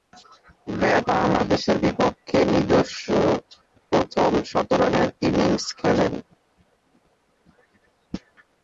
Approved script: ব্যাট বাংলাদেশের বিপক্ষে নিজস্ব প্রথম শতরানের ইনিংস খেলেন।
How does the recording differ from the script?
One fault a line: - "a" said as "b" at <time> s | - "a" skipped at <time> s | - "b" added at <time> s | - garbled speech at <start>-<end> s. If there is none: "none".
none